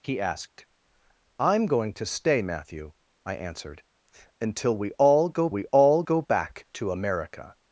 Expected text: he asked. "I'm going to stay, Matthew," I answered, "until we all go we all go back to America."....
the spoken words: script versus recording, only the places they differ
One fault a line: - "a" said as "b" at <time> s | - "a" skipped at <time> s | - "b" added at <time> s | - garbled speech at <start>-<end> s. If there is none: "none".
none